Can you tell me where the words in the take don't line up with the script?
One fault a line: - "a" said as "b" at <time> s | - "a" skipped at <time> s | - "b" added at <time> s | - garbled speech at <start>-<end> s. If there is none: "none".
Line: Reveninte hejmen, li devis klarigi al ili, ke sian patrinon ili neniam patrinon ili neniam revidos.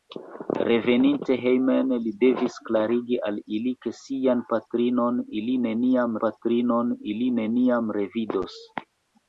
none